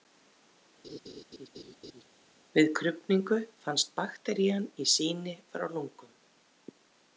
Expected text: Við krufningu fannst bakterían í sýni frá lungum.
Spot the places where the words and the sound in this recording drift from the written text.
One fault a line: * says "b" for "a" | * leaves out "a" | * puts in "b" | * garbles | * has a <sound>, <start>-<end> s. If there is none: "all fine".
* has a laugh, 0.8-2.0 s